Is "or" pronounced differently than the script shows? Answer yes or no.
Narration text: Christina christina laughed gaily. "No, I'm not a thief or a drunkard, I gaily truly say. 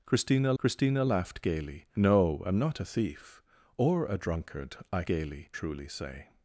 no